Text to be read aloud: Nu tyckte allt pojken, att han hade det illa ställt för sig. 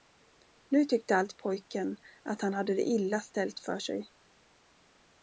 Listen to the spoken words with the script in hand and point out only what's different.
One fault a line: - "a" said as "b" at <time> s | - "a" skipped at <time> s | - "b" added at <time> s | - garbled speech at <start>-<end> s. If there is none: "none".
none